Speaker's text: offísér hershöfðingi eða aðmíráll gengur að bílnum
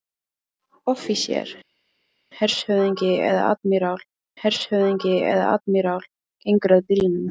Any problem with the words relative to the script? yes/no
yes